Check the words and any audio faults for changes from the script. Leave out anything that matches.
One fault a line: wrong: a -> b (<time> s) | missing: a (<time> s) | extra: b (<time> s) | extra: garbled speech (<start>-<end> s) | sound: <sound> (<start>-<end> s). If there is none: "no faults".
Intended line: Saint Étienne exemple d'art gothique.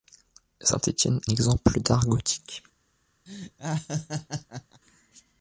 sound: laugh (3.3-4.8 s)